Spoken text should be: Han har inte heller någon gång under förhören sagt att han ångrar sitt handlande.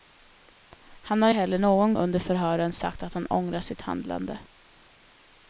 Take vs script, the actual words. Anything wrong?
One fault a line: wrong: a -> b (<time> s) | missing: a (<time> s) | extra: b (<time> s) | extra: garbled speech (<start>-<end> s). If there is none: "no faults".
missing: inte (1.3 s)
missing: gång (1.9 s)